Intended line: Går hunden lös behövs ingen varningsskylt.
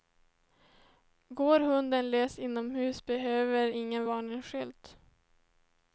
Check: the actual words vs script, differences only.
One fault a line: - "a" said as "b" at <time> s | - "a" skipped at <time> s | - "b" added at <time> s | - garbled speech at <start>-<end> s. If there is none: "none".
- "inomhus" added at 2.4 s